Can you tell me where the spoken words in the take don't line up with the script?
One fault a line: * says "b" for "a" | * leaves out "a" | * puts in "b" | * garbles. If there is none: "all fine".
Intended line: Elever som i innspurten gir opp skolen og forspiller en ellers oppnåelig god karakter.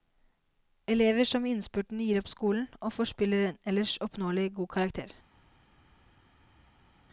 all fine